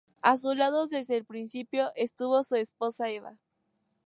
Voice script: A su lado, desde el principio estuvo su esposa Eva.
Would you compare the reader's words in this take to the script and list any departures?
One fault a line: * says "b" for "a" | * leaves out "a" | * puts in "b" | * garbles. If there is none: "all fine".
all fine